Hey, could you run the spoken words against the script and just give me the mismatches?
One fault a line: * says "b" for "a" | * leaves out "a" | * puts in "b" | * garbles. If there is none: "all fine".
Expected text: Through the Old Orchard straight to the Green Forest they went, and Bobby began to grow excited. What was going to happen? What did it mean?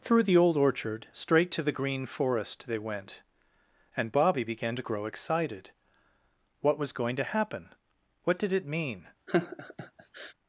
all fine